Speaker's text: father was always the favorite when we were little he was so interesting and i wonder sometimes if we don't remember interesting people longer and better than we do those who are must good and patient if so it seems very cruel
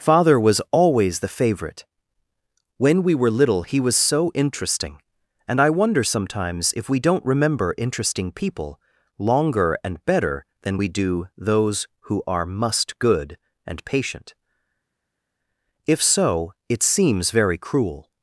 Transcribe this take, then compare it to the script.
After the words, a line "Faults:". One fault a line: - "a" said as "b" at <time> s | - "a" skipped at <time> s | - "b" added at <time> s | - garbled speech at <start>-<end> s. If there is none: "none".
father was always the favorite when we were little he was so interesting and i wonder sometimes if we don't remember interesting people longer and better than we do those who are must good and patient if so it seems very cruel
Faults:
none